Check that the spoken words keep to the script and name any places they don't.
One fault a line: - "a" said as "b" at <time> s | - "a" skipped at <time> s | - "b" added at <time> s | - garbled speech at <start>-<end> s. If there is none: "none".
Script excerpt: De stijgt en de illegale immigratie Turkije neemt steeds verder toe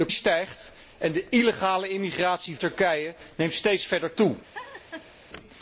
none